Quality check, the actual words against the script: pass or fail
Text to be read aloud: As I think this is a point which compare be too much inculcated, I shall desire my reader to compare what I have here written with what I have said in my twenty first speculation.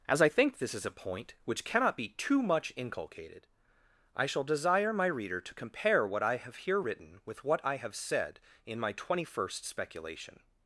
fail